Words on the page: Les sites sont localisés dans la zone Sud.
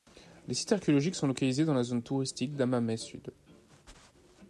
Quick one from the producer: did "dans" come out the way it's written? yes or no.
yes